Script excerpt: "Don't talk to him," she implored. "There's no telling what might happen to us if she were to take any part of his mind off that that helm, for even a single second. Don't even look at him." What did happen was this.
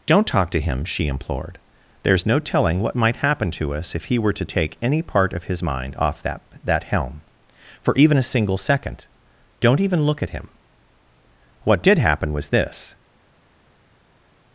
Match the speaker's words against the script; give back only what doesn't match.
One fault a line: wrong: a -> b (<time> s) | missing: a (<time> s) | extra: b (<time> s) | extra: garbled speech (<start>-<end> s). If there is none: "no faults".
wrong: she -> he (4.0 s)